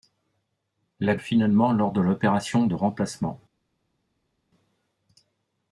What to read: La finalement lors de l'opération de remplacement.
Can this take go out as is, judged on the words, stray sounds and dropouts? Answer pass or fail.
pass